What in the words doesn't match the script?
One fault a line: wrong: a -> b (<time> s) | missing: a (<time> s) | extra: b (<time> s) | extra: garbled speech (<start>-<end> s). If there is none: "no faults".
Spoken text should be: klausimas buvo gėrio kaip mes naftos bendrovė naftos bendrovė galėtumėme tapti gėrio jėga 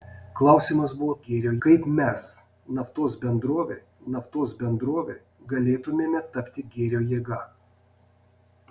no faults